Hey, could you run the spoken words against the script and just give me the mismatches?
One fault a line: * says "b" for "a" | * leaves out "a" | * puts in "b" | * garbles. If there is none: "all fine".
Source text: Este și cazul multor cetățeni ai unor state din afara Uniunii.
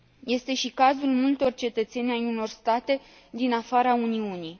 all fine